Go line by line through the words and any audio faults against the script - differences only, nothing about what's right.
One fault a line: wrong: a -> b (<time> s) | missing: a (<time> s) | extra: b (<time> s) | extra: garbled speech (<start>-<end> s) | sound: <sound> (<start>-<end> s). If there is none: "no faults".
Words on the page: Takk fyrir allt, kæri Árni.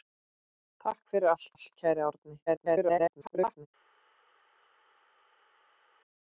extra: allt (1.5 s)
extra: garbled speech (2.5-3.7 s)